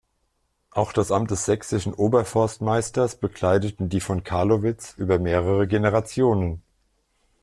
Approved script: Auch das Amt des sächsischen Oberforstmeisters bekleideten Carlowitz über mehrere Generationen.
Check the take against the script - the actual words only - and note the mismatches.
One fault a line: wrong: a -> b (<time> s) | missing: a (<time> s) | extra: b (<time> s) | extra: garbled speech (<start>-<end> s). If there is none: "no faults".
extra: die von (3.9 s)